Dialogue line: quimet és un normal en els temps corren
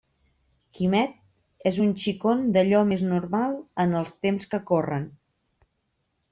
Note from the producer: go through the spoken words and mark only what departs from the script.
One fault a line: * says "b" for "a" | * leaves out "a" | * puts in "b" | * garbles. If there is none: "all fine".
* puts in "xicon d'allò més"
* puts in "que"